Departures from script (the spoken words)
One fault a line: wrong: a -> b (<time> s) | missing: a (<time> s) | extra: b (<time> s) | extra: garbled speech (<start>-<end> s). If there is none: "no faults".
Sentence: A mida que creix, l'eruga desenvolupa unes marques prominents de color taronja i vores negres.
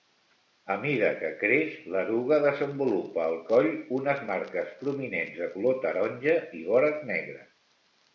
extra: al coll (3.2 s)